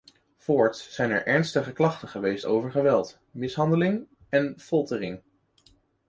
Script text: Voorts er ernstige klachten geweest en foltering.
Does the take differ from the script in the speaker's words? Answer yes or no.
yes